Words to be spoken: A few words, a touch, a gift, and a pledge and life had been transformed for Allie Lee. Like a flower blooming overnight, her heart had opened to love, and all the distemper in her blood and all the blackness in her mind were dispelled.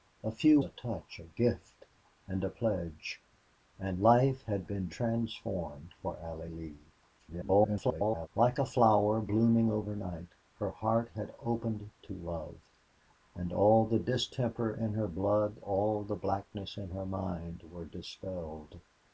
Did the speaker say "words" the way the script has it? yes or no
no